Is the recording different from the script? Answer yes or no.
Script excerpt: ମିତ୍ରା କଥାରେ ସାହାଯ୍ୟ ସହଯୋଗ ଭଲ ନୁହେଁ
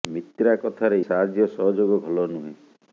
no